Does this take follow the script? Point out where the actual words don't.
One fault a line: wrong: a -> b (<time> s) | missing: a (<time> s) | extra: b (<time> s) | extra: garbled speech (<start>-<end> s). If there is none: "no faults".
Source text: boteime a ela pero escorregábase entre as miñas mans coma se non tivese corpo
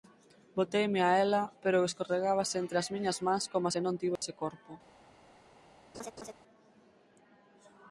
no faults